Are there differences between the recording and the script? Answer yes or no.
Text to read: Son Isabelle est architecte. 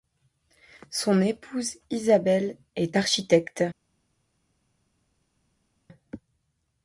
yes